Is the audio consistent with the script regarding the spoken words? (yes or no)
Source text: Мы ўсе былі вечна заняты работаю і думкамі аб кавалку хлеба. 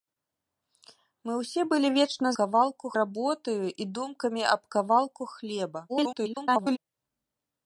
no